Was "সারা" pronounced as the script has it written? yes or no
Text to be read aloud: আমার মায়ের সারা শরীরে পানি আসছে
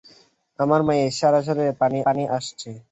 yes